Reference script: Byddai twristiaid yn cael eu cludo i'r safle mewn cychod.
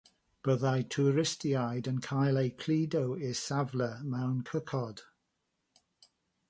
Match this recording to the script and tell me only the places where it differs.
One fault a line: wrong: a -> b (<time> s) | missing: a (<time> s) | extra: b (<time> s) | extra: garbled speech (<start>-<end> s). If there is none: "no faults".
no faults